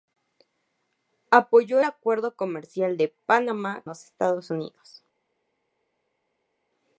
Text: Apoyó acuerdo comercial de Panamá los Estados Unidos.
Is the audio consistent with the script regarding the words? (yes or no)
yes